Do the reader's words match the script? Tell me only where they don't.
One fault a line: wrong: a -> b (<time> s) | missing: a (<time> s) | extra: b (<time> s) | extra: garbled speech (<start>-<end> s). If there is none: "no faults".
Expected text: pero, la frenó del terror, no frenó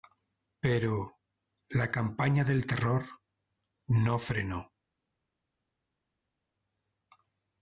wrong: frenó -> campaña (1.9 s)